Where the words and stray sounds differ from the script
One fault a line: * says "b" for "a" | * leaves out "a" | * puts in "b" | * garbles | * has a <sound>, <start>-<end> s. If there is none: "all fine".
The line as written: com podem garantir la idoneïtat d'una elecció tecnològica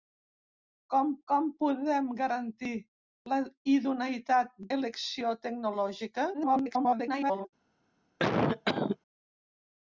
* puts in "com"
* leaves out "d'una"
* garbles
* has a cough, 8.2-9.0 s